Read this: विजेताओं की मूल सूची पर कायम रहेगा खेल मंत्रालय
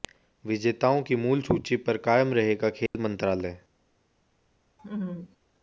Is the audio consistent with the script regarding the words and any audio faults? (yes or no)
no